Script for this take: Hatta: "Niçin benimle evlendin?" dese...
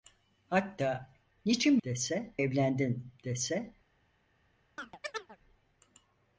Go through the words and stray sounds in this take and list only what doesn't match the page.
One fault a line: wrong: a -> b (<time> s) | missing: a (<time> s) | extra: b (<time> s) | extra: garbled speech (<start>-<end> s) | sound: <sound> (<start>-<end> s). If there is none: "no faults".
wrong: benimle -> dese (1.8 s)
sound: chirp (4.8-5.4 s)